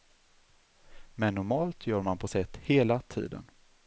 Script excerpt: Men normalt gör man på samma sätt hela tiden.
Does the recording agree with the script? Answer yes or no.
no